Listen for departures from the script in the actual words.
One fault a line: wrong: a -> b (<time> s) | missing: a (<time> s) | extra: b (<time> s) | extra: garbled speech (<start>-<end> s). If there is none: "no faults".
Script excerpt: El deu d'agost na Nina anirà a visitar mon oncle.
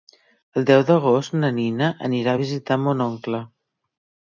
no faults